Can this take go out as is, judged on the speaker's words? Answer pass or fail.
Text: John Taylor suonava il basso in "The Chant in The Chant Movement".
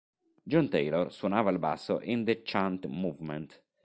fail